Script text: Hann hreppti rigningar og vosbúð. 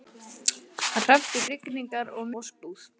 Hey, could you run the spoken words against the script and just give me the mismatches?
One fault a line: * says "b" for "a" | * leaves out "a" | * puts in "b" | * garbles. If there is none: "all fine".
all fine